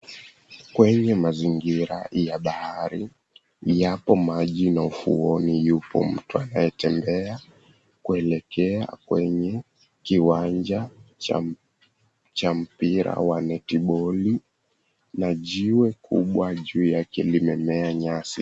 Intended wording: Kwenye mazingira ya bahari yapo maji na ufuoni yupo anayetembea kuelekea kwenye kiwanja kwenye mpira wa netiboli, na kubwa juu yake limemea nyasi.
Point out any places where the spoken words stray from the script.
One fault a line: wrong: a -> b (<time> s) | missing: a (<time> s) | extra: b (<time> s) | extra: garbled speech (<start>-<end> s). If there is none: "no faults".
extra: mtu (6.0 s)
wrong: kwenye -> cha (12.3 s)
extra: jiwe (15.3 s)